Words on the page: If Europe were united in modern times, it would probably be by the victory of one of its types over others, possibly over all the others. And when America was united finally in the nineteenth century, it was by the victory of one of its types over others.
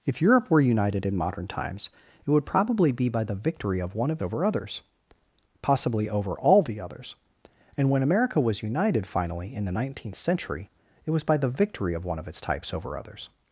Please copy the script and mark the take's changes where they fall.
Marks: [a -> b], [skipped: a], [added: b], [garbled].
If Europe were united in modern times, it would probably be by the victory of one of [skipped: its types] over others, possibly over all the others. And when America was united finally in the nineteenth century, it was by the victory of one of its types over others.